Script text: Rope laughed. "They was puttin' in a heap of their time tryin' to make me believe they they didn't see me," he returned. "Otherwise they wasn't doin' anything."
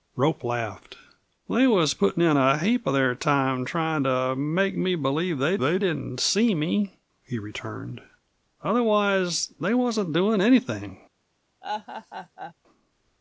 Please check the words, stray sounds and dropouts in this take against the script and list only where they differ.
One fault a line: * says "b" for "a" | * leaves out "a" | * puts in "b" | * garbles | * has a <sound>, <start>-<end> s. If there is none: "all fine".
* has a laugh, 11.6-12.5 s